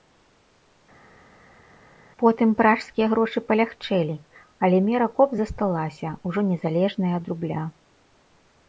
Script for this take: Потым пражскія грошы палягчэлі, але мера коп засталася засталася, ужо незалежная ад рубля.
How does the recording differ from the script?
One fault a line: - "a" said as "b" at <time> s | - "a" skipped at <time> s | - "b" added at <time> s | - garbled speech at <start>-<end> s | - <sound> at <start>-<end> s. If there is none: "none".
- "засталася" skipped at 6.1 s